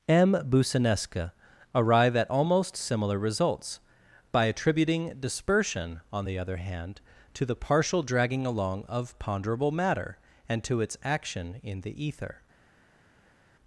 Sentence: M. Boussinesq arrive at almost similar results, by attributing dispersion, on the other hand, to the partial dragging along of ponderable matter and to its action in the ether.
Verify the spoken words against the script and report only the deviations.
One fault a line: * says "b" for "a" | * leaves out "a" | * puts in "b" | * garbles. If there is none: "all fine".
all fine